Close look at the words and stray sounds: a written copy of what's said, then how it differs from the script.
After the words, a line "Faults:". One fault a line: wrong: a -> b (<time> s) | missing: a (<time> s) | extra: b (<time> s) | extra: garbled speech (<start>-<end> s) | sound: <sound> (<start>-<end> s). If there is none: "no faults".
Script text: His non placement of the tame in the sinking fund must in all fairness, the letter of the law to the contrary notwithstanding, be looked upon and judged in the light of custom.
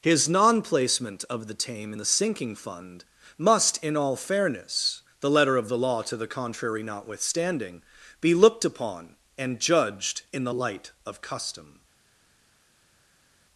His non placement of the tame in the sinking fund must in all fairness, the letter of the law to the contrary notwithstanding, be looked upon and judged in the light of custom.
Faults:
no faults